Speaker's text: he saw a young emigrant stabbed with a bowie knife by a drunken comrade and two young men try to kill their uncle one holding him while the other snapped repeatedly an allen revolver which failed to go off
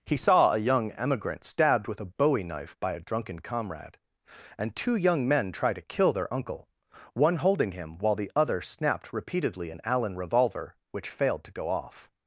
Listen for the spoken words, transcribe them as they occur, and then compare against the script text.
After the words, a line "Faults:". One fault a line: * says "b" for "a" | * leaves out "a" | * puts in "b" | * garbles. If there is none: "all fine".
he saw a young emigrant stabbed with a bowie knife by a drunken comrade and two young men try to kill their uncle one holding him while the other snapped repeatedly an allen revolver which failed to go off
Faults:
all fine